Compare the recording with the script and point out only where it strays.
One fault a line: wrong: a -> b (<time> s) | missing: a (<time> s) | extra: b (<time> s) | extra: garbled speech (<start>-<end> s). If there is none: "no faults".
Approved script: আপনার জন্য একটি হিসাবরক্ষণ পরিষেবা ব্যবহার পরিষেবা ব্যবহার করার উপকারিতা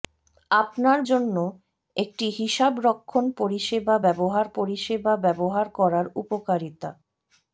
no faults